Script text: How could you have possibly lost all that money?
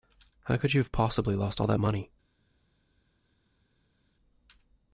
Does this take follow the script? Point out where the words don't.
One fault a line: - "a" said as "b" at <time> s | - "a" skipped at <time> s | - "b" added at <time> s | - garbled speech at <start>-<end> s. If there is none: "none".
none